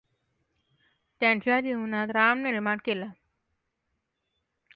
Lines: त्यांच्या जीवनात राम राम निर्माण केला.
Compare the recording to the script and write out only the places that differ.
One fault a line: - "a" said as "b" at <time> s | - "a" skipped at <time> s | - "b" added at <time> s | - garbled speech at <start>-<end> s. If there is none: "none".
- "राम" skipped at 2.4 s